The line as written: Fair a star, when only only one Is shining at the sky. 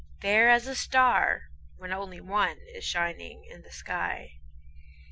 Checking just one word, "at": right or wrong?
wrong